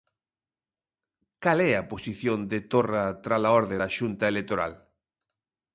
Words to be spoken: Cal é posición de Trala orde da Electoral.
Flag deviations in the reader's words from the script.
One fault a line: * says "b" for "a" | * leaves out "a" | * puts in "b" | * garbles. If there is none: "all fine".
* puts in "a"
* puts in "Torra"
* puts in "Xunta"